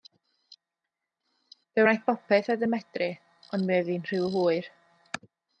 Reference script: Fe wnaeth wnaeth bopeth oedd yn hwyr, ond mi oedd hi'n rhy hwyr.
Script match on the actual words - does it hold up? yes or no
no